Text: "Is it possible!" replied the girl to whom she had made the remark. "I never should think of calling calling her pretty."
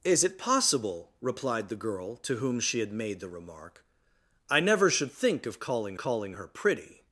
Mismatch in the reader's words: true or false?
false